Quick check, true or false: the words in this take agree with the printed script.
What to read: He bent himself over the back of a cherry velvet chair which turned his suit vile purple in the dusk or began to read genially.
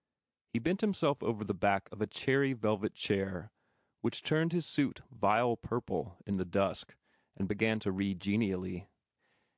false